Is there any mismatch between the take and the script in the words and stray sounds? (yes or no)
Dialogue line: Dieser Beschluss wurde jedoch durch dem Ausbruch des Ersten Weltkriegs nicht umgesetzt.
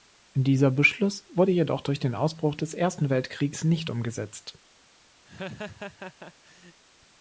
yes